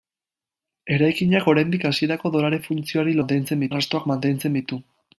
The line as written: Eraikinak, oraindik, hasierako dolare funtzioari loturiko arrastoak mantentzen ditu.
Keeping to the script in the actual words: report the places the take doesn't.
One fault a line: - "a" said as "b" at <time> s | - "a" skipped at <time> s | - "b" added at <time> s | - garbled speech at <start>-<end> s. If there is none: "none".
- "loturiko" said as "mantentzen" at 3.2 s